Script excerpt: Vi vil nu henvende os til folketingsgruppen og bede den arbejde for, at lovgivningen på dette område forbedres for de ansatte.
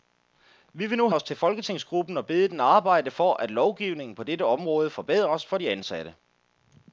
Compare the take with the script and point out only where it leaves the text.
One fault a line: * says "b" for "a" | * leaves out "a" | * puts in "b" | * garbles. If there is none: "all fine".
* leaves out "henvende"